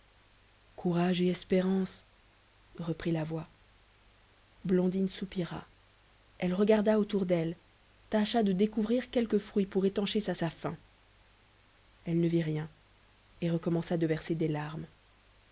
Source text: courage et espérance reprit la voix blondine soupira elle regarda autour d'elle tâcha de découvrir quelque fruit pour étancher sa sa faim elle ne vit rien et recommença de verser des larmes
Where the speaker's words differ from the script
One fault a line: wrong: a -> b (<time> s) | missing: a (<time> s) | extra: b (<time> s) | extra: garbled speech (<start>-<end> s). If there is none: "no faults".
no faults